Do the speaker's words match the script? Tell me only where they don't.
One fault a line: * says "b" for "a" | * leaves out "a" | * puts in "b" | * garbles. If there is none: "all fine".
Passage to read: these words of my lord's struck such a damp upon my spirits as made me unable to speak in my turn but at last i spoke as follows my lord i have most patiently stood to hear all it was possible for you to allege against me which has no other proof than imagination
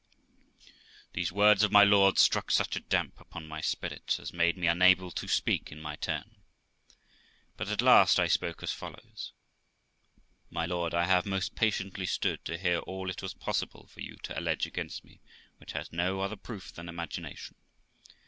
all fine